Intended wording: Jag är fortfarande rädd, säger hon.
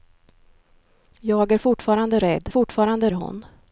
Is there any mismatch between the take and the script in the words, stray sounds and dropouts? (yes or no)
yes